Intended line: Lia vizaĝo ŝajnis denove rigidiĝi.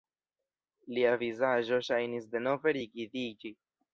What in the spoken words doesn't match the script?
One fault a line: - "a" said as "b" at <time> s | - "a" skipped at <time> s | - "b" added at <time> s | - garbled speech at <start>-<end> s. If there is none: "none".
none